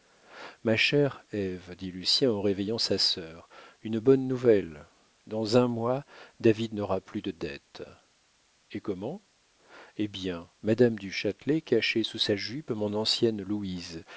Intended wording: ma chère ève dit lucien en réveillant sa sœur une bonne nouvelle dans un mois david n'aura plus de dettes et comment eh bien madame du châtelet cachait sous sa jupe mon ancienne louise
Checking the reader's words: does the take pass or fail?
pass